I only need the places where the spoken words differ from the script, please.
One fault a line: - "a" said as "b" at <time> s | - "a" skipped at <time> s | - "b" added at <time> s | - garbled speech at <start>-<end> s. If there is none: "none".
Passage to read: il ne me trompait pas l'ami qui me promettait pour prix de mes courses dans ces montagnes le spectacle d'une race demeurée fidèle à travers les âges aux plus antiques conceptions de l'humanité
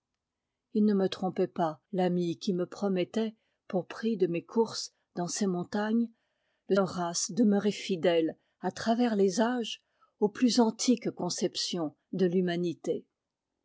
- "spectacle d'une" skipped at 6.8 s